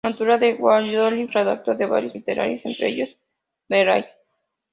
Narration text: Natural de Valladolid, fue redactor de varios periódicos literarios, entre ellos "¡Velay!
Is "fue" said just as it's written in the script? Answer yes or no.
no